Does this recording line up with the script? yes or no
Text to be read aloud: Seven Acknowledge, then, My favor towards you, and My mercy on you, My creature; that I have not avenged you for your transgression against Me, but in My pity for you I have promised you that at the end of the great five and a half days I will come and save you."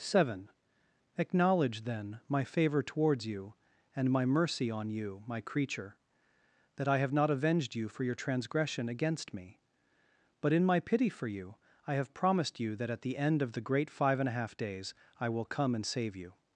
yes